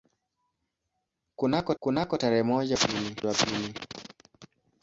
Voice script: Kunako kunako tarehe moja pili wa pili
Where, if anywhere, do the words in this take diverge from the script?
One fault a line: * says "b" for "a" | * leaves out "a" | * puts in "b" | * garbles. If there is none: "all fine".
all fine